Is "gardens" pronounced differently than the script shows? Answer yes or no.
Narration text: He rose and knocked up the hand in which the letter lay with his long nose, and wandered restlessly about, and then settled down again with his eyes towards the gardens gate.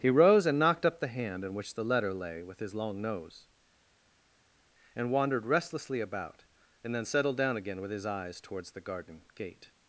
yes